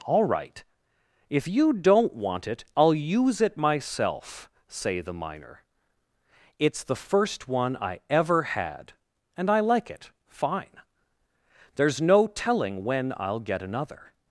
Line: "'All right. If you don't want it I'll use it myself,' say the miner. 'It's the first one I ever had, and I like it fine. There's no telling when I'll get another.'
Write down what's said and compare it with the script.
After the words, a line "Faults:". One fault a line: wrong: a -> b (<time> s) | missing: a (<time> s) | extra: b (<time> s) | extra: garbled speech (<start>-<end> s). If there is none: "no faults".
"'All right. If you don't want it I'll use it myself,' say the miner. 'It's the first one I ever had, and I like it fine. There's no telling when I'll get another.'
Faults:
no faults